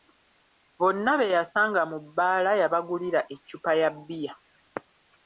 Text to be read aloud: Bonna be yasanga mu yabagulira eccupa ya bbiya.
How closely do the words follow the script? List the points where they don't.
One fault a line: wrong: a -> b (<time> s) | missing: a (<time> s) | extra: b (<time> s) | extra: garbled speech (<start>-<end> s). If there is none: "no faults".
extra: bbaala (2.0 s)